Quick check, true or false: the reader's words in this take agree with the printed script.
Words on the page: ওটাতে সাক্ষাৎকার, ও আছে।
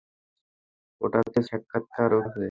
true